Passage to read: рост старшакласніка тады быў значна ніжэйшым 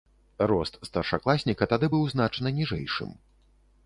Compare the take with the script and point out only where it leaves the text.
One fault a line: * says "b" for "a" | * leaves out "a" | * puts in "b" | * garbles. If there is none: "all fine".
all fine